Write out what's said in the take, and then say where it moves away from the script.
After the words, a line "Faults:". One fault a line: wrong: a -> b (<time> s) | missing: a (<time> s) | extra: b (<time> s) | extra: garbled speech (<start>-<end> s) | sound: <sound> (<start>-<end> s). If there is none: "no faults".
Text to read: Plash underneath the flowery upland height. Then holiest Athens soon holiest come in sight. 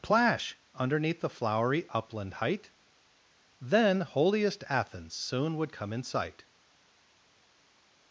Plash underneath the flowery upland height. Then holiest Athens soon would come in sight.
Faults:
wrong: holiest -> would (5.6 s)